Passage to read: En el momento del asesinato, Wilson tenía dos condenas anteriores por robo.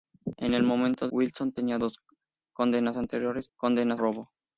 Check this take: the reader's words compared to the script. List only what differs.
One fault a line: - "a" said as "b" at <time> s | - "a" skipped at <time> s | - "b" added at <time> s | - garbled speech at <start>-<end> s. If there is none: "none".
- "del asesinato" skipped at 1.1 s
- "por" said as "condenas" at 3.6 s